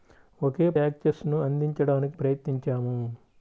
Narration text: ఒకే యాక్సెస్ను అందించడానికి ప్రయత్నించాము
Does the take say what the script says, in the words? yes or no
yes